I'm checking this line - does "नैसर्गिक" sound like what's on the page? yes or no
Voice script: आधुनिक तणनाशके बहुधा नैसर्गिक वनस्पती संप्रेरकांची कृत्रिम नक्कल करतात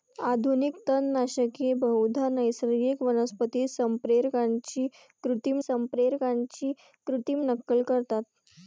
yes